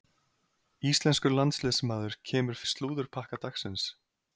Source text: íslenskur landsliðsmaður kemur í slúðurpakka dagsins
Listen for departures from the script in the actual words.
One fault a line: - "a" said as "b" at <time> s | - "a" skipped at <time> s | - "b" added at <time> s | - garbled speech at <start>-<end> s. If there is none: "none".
none